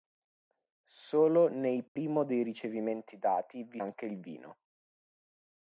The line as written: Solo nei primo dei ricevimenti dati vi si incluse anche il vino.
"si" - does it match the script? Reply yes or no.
no